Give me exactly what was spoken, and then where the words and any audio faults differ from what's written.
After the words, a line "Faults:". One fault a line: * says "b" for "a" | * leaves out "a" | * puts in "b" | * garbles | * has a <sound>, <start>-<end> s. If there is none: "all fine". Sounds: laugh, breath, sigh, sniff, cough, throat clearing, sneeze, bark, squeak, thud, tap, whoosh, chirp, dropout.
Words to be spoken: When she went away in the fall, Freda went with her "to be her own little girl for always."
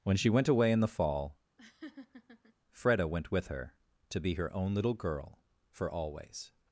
When she went away in the fall, Freda went with her "to be her own little girl for always."
Faults:
* has a laugh, 1.6-2.5 s